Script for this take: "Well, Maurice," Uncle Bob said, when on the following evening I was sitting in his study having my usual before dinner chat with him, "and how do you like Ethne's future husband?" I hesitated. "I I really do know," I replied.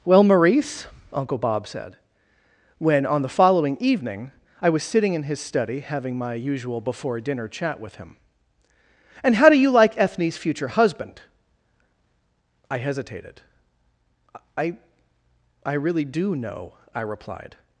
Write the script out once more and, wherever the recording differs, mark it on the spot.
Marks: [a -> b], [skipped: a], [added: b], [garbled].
"Well, Maurice," Uncle Bob said, when on the following evening I was sitting in his study having my usual before dinner chat with him, "and how do you like Ethne's future husband?" I hesitated. "I I really do know," I replied.